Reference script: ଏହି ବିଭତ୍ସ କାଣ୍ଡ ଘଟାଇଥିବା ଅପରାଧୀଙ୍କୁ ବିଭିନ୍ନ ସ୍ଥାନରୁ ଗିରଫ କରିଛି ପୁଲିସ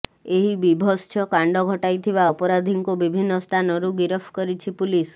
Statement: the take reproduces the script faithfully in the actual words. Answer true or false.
true